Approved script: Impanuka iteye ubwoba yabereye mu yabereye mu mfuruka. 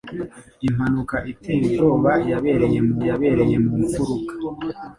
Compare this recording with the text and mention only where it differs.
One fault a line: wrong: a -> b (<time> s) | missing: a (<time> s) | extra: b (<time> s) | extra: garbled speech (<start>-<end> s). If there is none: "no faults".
no faults